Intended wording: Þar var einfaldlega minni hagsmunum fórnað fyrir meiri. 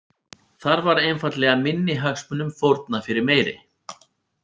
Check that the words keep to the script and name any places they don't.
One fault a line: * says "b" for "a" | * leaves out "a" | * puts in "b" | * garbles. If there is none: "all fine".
all fine